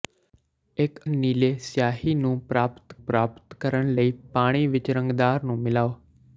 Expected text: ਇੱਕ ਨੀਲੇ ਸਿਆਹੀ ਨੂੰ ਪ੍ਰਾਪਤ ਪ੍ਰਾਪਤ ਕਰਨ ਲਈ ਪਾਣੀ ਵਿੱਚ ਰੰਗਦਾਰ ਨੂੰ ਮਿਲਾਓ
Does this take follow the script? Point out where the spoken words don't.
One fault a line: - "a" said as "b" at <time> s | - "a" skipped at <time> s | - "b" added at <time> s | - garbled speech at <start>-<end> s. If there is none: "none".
none